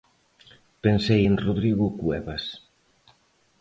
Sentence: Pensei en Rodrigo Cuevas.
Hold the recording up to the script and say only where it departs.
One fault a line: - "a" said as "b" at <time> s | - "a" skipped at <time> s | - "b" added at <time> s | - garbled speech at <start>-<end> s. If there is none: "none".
none